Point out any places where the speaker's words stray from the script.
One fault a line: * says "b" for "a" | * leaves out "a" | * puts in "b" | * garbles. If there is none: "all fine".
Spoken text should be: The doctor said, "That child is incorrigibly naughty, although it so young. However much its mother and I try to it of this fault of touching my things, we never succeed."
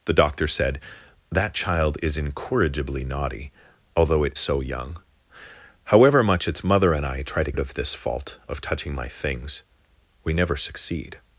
all fine